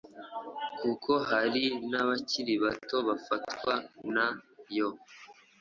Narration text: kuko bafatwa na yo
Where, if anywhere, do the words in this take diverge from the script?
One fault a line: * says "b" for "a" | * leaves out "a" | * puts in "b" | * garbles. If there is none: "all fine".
* puts in "hari n'abakiri bato"